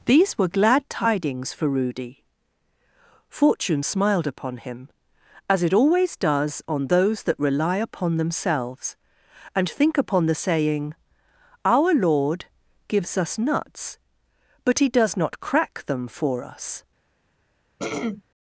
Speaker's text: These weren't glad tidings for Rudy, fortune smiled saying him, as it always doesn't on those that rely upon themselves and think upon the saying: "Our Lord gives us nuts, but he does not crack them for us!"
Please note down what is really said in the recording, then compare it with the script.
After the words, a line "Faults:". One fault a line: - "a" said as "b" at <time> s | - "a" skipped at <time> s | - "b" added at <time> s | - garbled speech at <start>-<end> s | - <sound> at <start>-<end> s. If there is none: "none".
These were glad tidings for Rudy, fortune smiled upon him, as it always does on those that rely upon themselves and think upon the saying: "Our Lord gives us nuts, but he does not crack them for us!"
Faults:
- "weren't" said as "were" at 0.3 s
- "saying" said as "upon" at 4.3 s
- "doesn't" said as "does" at 6.2 s
- throat clearing at 17.8-18.2 s